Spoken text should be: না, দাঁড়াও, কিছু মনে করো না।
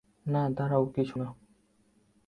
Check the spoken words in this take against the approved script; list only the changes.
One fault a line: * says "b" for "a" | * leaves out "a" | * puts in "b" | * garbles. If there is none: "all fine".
* leaves out "মনে করো"